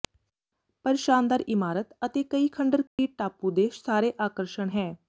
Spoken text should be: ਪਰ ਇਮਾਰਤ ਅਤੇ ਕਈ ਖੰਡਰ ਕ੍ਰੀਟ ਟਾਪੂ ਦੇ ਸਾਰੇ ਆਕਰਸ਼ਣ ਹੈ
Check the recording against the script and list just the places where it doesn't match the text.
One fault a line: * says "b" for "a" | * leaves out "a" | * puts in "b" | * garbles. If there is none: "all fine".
* puts in "ਸ਼ਾਨਦਾਰ"